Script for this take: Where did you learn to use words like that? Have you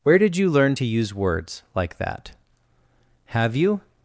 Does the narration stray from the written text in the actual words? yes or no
no